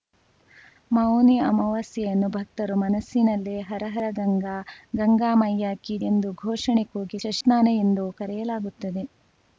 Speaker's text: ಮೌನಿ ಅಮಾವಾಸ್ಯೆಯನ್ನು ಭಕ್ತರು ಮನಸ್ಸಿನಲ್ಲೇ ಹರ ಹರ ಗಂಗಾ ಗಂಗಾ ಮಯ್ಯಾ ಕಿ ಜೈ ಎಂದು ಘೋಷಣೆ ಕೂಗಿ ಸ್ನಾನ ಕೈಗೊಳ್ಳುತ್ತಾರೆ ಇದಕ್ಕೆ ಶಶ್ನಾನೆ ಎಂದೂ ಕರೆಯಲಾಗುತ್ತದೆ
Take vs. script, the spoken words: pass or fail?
fail